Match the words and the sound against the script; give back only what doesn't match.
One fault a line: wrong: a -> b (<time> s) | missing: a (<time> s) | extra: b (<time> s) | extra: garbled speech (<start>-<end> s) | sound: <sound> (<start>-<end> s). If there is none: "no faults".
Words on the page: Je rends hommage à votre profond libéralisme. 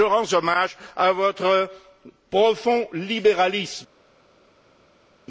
no faults